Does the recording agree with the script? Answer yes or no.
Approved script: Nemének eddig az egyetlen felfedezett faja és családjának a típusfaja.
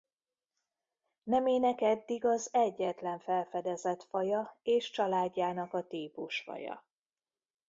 yes